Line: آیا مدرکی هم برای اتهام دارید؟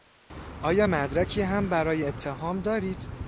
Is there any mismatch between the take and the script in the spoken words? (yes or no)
no